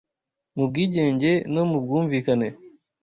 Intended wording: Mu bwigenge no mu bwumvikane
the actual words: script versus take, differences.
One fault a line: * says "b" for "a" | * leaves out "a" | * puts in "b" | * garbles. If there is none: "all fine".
all fine